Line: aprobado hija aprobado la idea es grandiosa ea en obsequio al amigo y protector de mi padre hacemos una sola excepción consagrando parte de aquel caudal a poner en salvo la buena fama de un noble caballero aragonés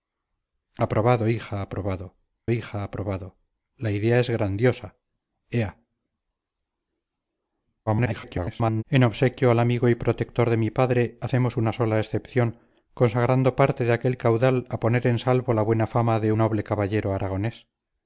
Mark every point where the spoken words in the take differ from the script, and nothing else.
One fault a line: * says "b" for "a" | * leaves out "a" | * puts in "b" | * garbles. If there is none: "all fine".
* puts in "hija aprobado"
* garbles
* leaves out "un"